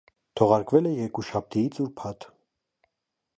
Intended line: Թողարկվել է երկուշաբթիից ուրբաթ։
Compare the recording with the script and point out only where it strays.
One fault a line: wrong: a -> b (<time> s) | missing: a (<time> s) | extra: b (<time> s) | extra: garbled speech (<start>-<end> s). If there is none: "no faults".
no faults